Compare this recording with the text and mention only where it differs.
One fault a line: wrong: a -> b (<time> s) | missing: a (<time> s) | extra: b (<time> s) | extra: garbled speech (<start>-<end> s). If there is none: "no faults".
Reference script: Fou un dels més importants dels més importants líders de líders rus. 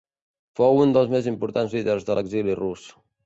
missing: dels més importants (1.8 s)
wrong: líders -> l'exili (2.2 s)